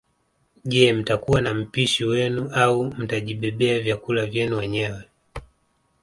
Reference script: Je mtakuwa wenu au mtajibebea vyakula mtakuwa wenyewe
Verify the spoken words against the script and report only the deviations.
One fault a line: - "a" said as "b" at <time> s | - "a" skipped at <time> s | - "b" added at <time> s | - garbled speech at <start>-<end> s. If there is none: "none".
- "na mpishi" added at 1.4 s
- "mtakuwa" said as "vyenu" at 4.3 s